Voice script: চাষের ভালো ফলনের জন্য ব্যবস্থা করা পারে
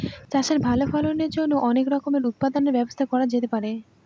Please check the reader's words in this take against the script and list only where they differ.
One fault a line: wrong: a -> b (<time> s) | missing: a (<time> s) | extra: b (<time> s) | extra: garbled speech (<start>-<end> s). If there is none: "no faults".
extra: অনেক রকমের উৎপাদনের (1.7 s)
extra: যেতে (3.3 s)